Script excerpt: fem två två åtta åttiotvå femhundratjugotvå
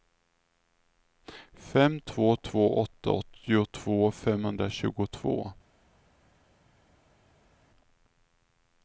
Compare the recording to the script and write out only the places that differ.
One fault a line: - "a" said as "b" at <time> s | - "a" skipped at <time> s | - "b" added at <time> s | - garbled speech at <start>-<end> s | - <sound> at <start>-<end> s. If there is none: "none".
none